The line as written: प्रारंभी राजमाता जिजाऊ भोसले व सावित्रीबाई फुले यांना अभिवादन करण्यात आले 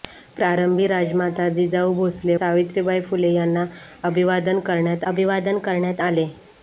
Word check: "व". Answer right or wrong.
wrong